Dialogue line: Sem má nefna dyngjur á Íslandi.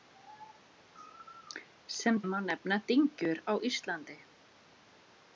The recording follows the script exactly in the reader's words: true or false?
true